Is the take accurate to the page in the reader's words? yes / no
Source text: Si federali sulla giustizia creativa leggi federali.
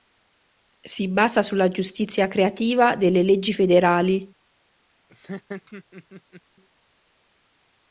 no